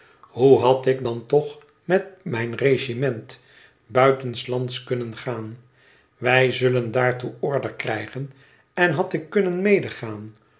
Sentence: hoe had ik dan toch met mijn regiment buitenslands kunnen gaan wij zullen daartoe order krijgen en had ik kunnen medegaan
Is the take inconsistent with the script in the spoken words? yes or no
no